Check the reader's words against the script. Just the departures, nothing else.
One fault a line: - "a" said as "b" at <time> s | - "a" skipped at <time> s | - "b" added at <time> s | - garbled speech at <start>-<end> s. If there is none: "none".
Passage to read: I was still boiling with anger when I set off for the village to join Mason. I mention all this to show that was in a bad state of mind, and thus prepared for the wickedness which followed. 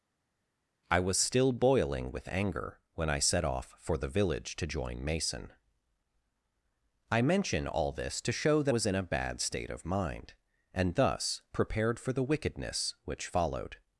none